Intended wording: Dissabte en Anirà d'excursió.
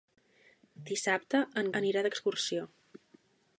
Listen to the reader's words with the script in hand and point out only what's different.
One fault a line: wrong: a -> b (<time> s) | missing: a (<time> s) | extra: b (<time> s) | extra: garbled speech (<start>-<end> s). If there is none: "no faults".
no faults